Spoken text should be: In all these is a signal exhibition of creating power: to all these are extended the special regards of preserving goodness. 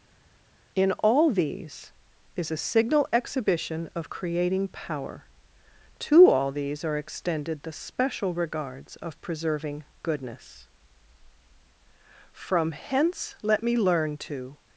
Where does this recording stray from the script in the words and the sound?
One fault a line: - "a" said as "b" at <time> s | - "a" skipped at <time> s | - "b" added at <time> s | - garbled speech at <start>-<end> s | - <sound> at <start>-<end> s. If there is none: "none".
- "From hence let me learn to" added at 12.3 s